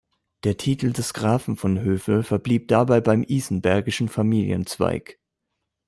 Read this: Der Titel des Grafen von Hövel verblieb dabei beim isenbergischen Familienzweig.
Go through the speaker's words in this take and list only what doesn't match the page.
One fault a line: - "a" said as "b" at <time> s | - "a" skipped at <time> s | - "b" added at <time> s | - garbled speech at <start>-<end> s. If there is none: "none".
none